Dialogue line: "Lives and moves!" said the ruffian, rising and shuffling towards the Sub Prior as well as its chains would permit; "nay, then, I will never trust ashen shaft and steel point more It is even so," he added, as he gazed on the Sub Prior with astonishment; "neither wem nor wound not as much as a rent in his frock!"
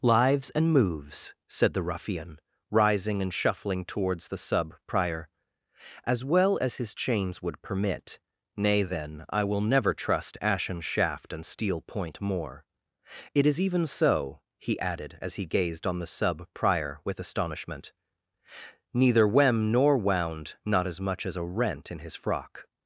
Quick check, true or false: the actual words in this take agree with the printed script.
false